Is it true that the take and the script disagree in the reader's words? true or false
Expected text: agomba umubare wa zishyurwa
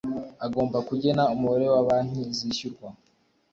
true